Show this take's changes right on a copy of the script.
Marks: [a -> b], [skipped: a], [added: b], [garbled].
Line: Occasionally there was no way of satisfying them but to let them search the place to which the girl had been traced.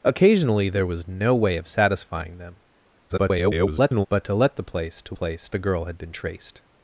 Occasionally there was no way of satisfying them [garbled] but to let [skipped: them search] the place to [which -> place] the girl had been traced.